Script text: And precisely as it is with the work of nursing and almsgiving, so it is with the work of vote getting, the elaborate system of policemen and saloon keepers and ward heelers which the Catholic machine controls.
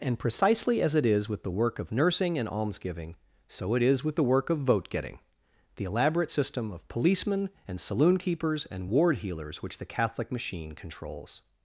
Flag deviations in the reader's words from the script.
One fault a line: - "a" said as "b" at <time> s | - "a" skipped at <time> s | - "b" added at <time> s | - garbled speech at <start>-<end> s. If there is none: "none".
none